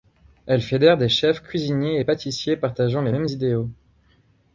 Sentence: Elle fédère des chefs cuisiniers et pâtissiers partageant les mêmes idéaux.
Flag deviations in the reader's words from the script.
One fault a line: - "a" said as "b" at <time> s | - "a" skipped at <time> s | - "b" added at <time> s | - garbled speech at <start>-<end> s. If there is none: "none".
none